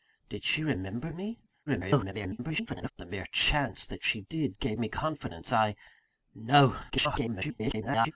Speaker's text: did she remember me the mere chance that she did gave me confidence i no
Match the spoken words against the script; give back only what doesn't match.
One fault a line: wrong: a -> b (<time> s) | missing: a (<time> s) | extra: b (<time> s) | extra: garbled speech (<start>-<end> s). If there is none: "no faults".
extra: garbled speech (1.7-2.9 s)
extra: garbled speech (6.9-8.1 s)